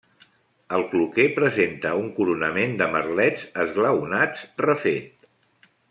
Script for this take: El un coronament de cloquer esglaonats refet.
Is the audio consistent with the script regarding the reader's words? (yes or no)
no